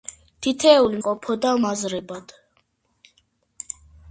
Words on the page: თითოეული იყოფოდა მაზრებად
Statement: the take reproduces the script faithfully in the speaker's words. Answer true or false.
true